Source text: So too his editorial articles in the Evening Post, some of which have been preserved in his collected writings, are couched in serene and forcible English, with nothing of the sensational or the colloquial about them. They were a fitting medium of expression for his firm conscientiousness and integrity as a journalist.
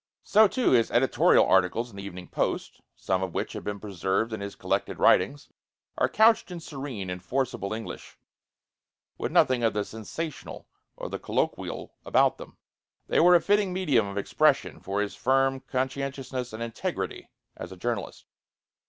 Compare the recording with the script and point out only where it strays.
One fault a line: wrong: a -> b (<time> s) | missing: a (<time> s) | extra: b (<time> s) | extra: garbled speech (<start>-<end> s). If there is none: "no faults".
no faults